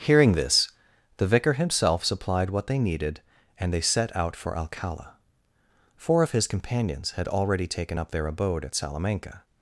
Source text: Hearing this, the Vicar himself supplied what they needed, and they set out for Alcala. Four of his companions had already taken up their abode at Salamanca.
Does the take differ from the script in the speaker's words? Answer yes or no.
no